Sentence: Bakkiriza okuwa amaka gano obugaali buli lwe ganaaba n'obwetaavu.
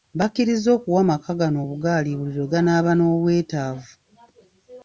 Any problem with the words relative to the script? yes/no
no